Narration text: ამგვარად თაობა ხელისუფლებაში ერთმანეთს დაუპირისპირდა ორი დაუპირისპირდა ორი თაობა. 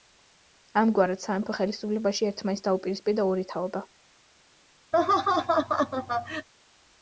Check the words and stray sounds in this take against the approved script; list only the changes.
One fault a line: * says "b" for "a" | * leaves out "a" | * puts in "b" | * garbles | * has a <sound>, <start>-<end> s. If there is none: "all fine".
* says "სამეფო" for "თაობა"
* leaves out "დაუპირისპირდა ორი"
* has a laugh, 4.9-6.5 s